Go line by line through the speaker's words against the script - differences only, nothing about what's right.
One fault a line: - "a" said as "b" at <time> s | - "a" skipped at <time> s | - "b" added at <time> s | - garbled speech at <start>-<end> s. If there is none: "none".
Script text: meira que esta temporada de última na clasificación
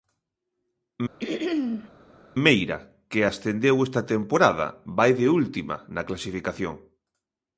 - "ascendeu" added at 3.3 s
- "vai" added at 5.0 s